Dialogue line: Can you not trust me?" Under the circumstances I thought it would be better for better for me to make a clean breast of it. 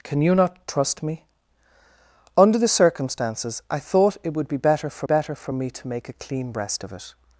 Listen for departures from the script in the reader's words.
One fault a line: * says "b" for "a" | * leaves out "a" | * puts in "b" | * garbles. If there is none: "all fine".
all fine